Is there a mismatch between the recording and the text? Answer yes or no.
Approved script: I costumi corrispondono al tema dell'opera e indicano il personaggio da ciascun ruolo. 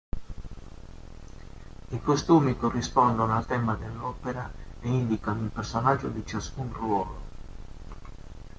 yes